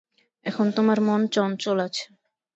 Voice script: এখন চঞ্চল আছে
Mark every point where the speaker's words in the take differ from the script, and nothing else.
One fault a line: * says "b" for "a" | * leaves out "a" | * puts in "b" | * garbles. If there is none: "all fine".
* puts in "তোমার মন"